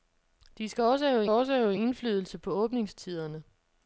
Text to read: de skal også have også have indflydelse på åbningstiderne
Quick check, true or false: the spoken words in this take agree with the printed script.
true